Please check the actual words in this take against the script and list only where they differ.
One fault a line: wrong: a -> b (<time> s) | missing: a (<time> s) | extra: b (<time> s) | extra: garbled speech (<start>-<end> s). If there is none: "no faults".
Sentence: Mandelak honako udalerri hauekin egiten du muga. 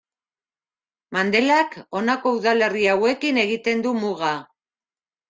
no faults